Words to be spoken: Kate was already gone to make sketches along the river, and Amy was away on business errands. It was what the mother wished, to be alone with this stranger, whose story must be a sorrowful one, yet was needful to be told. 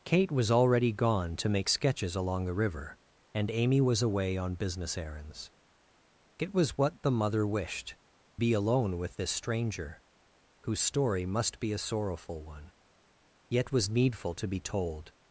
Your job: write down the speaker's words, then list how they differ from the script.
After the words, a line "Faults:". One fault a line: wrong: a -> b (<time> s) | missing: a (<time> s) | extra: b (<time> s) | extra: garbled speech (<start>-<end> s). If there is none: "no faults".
Kate was already gone to make sketches along the river, and Amy was away on business errands. It was what the mother wished, be alone with this stranger, whose story must be a sorrowful one, yet was needful to be told.
Faults:
missing: to (8.0 s)